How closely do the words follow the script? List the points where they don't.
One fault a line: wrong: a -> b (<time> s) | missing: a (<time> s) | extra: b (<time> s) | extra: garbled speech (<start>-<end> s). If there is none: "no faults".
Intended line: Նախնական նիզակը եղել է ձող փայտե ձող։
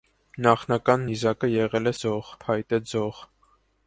no faults